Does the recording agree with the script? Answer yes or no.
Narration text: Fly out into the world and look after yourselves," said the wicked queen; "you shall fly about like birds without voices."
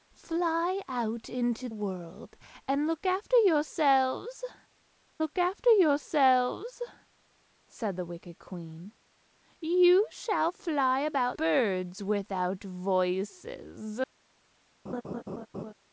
no